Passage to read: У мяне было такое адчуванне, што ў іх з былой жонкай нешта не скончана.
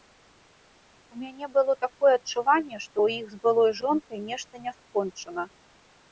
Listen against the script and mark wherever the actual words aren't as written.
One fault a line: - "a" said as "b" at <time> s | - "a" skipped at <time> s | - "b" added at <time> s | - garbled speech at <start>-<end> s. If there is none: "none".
none